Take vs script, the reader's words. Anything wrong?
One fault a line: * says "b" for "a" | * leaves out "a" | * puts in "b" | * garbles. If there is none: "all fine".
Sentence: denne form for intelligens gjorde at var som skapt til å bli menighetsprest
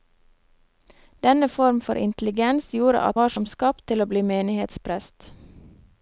all fine